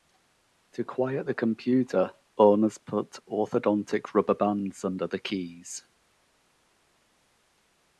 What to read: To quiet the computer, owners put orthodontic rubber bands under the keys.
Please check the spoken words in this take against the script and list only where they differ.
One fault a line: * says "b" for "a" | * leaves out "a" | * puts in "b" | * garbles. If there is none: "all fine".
all fine